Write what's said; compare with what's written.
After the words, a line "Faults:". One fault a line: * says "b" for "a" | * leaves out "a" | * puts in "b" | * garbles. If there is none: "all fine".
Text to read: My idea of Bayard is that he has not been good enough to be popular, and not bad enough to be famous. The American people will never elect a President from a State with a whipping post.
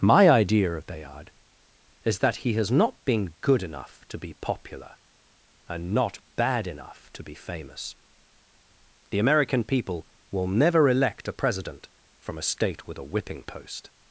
My idea of Bayard is that he has not been good enough to be popular, and not bad enough to be famous. The American people will never elect a President from a State with a whipping post.
Faults:
all fine